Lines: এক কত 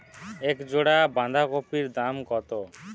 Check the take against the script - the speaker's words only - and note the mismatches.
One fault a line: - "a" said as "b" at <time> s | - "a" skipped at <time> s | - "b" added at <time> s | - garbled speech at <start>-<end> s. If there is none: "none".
- "জোড়া বাঁধাকপির দাম" added at 0.7 s